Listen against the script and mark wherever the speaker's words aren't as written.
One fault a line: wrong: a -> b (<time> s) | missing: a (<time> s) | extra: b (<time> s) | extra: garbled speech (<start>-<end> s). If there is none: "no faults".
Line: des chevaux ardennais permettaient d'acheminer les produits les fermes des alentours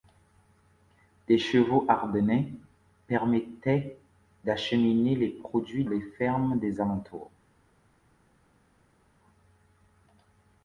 no faults